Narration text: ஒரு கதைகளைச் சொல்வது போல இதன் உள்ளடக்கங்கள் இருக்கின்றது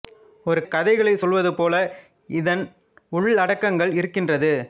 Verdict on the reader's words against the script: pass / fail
pass